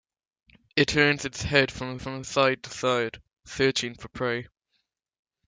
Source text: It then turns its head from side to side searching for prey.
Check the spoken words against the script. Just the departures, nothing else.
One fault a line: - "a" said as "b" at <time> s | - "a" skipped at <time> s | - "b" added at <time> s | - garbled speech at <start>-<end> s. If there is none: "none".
- "then" skipped at 0.9 s
- "from" added at 2.0 s